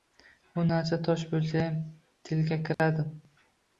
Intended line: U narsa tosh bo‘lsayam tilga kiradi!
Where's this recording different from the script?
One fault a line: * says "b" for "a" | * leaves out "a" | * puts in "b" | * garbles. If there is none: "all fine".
all fine